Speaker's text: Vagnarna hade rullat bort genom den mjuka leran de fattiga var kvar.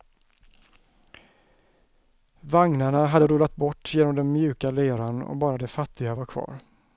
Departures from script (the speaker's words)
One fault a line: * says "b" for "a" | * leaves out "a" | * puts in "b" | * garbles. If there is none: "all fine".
* puts in "och bara"